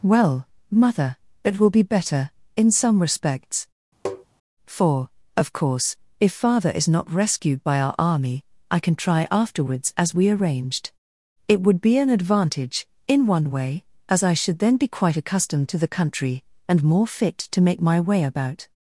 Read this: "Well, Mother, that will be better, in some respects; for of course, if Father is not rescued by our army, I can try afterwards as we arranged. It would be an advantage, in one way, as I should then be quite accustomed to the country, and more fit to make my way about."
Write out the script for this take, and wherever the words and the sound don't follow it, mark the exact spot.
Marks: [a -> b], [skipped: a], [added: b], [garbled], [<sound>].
"Well, Mother, [that -> it] will be better, in some respects; [tap] for of course, if Father is not rescued by our army, I can try afterwards as we arranged. It would be an advantage, in one way, as I should then be quite accustomed to the country, and more fit to make my way about."